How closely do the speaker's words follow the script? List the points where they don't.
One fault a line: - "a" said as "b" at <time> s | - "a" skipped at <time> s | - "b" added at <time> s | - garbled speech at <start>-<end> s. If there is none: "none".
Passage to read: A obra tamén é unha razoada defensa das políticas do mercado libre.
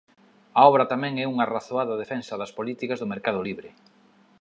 none